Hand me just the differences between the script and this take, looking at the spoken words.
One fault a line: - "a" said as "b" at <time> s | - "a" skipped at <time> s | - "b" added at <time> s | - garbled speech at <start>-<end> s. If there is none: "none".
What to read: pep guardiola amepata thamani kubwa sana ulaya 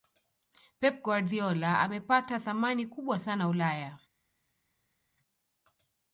none